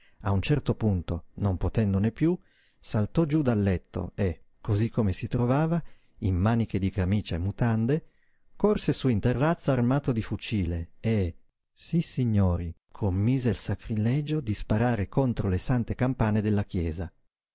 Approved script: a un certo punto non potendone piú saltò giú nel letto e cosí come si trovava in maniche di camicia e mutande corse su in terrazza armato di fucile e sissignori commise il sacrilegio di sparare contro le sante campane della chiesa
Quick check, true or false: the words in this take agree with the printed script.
false